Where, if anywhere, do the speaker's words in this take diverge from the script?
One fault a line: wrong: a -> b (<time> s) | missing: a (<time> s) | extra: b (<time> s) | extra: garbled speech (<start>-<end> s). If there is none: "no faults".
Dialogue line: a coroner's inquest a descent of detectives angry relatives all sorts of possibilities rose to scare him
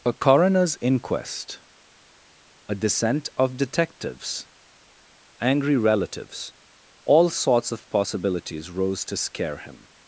no faults